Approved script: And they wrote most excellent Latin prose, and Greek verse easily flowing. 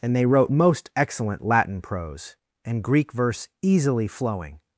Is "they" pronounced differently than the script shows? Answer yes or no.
no